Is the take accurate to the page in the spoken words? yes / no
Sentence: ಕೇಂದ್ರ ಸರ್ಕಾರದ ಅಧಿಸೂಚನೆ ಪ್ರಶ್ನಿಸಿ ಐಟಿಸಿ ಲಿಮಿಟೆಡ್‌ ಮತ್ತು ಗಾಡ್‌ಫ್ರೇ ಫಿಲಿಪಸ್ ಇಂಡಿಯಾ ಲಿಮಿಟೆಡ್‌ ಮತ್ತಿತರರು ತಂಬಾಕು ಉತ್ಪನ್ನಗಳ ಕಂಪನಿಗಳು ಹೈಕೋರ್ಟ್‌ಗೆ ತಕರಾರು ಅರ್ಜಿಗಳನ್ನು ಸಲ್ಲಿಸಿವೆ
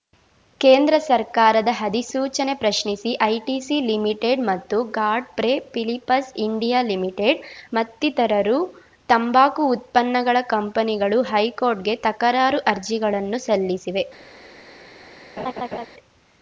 yes